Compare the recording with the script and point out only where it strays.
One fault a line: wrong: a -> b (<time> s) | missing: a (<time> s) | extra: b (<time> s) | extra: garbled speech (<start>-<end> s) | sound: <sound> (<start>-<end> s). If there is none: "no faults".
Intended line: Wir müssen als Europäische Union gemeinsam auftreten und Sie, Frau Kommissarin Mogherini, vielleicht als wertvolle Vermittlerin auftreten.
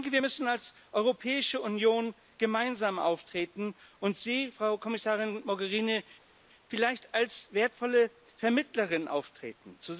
no faults